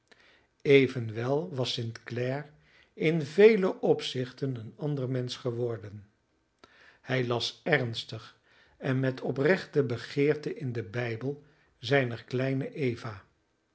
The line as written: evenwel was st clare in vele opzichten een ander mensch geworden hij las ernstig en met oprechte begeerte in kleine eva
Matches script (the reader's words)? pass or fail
fail